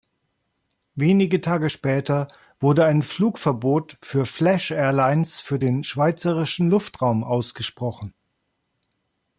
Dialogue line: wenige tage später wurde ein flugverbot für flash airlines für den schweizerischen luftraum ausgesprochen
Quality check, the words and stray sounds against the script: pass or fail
pass